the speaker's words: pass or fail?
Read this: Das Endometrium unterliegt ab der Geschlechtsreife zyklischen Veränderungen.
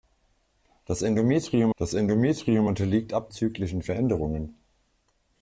fail